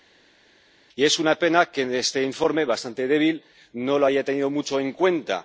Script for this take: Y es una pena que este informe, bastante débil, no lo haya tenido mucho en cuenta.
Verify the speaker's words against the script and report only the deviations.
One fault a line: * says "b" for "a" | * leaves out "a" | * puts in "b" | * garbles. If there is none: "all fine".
all fine